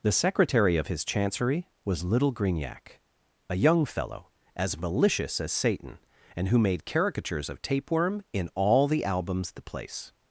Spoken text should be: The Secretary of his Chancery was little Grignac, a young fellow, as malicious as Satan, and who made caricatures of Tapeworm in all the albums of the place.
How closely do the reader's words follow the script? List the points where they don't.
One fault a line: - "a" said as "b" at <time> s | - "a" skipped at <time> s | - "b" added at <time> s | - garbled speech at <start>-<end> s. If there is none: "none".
- "of" skipped at 9.5 s